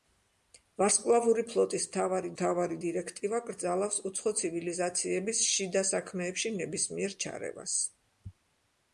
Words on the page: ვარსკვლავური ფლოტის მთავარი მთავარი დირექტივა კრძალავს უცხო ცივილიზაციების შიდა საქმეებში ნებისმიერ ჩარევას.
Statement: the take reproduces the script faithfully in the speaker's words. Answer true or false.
true